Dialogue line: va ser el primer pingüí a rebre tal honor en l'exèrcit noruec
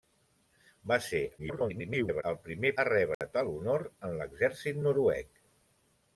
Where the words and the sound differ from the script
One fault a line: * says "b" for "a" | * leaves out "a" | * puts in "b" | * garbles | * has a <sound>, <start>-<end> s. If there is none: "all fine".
* garbles
* leaves out "pingüí"
* has a dropout, 3.1-3.2 s